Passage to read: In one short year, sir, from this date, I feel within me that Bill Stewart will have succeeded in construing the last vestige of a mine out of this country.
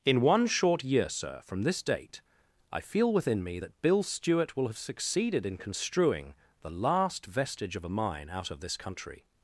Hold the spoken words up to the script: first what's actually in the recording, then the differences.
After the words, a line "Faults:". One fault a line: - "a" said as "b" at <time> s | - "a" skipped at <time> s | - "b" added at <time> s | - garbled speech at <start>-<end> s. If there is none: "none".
In one short year, sir, from this date, I feel within me that Bill Stewart will have succeeded in construing the last vestige of a mine out of this country.
Faults:
none